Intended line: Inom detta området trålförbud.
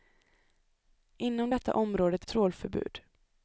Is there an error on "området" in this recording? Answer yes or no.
no